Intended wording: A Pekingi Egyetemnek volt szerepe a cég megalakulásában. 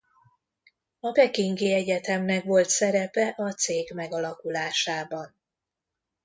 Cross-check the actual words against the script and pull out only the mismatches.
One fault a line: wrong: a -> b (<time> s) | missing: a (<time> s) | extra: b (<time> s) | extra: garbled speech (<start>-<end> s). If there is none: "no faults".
no faults